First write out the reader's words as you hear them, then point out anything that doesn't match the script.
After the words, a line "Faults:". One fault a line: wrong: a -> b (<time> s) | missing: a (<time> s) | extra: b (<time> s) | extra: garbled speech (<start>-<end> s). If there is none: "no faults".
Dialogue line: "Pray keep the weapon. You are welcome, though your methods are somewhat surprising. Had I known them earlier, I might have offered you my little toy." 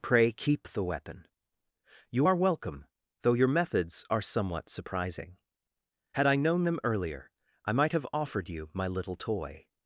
"Pray keep the weapon. You are welcome, though your methods are somewhat surprising. Had I known them earlier, I might have offered you my little toy."
Faults:
no faults